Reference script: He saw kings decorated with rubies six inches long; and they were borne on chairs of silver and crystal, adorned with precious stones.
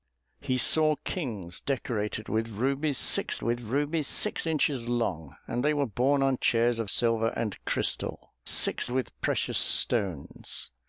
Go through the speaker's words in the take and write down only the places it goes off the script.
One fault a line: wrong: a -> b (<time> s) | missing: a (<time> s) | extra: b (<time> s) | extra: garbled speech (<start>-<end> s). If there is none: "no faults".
extra: with rubies six (3.4 s)
wrong: adorned -> six (8.5 s)